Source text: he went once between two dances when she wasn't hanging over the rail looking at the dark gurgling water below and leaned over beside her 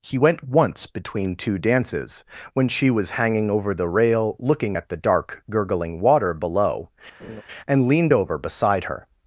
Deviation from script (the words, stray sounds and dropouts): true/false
true